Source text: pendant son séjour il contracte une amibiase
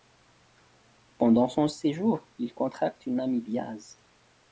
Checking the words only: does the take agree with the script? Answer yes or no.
yes